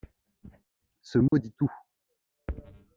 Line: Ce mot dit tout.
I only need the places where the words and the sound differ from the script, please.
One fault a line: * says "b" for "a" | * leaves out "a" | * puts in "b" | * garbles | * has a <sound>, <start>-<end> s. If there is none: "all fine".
* has a dropout, 1.3-1.3 s